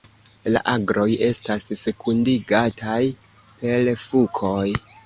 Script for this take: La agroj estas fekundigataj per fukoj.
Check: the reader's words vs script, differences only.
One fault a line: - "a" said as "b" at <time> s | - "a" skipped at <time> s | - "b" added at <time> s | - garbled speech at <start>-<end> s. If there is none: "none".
none